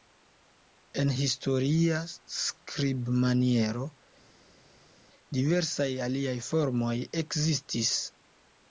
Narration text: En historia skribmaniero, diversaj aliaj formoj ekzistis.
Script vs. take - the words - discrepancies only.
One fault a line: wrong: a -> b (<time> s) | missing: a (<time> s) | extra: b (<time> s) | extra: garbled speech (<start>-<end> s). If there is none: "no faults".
no faults